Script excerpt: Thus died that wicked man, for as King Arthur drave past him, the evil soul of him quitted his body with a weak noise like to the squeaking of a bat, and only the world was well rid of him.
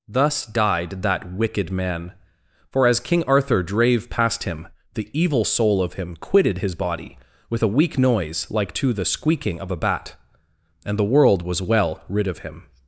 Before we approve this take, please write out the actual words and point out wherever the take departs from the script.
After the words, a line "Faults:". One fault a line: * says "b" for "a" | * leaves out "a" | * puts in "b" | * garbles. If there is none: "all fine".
Thus died that wicked man, for as King Arthur drave past him, the evil soul of him quitted his body with a weak noise like to the squeaking of a bat, and the world was well rid of him.
Faults:
* leaves out "only"